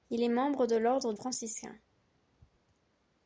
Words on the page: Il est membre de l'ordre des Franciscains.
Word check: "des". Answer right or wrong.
wrong